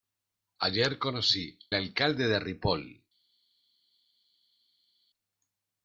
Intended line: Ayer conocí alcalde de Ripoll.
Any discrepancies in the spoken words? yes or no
no